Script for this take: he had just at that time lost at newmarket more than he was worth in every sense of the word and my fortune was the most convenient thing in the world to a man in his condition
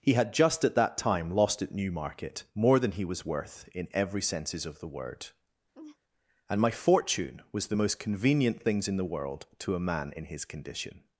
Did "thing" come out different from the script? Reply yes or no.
yes